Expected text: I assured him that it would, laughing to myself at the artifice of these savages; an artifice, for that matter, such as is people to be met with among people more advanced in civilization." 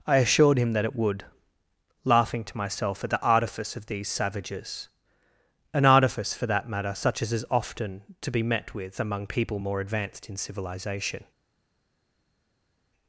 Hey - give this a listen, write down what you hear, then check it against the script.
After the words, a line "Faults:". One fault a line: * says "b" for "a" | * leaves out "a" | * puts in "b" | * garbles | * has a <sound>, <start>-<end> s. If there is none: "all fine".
I assured him that it would, laughing to myself at the artifice of these savages; an artifice, for that matter, such as is often to be met with among people more advanced in civilization."
Faults:
* says "often" for "people"